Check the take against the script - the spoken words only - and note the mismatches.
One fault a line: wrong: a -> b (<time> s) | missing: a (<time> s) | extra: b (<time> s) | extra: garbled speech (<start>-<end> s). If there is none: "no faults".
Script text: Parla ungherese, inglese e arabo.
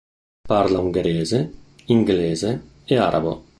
no faults